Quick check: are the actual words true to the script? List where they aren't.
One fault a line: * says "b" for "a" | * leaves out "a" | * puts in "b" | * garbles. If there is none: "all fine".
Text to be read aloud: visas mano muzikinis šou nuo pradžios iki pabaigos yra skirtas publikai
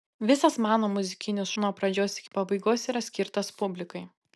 * leaves out "šou"